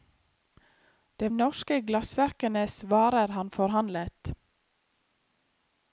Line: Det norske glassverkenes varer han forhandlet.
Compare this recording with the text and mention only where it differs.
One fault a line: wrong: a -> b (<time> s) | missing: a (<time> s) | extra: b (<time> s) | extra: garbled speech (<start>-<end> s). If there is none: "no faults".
no faults